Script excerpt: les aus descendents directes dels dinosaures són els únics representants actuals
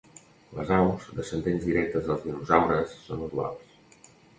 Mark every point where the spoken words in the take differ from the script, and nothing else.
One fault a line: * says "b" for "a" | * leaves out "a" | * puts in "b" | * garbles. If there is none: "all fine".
* leaves out "els únics representants"